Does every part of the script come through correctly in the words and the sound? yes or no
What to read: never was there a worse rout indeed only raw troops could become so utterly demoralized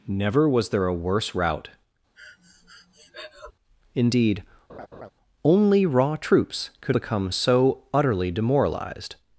no